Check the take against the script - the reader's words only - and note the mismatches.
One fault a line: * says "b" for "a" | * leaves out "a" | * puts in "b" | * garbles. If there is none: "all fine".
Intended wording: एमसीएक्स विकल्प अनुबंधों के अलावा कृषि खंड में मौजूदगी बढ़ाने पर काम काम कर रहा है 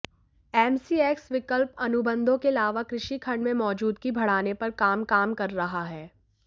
all fine